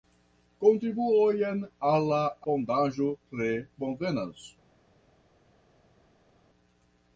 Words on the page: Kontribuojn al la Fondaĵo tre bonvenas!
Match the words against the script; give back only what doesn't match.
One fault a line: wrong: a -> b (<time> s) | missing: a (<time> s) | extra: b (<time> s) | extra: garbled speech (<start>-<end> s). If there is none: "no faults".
no faults